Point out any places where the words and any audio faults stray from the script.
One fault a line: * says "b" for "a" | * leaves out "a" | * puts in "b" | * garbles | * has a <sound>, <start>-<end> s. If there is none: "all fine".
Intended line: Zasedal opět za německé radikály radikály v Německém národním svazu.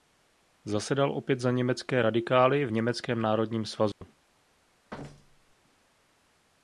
* leaves out "radikály"
* has a dropout, 3.9-4.0 s
* has a thud, 4.9-5.6 s